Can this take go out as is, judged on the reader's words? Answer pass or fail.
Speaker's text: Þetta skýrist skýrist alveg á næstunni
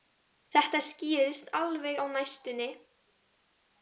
fail